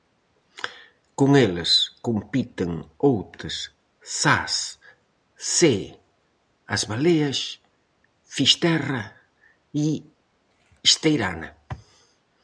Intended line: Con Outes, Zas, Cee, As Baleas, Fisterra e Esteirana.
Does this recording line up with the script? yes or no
no